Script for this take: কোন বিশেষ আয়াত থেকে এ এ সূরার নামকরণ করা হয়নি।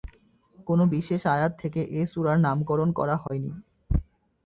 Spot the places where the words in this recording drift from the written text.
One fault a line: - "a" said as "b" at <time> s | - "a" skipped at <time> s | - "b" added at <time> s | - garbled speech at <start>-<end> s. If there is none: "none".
- "এ" skipped at 2.1 s